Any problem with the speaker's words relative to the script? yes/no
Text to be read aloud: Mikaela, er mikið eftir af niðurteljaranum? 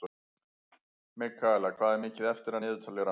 yes